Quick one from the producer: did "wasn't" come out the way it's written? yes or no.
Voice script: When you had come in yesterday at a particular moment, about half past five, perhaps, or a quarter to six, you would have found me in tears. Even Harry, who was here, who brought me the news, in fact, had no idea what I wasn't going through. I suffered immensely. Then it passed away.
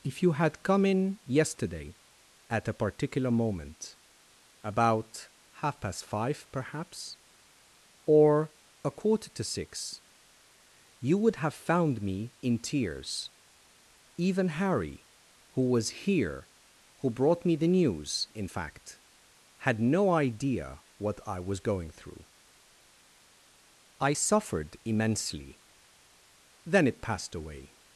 no